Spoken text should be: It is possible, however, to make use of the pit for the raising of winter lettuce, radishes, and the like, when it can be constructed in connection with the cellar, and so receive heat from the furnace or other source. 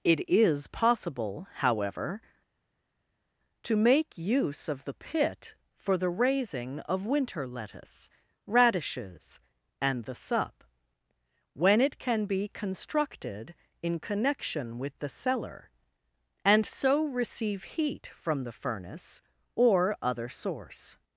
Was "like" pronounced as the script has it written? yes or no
no